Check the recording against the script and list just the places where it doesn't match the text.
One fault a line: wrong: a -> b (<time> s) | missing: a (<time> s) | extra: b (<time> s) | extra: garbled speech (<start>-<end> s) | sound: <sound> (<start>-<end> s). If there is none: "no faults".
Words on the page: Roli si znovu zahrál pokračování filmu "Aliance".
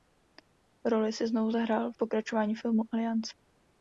no faults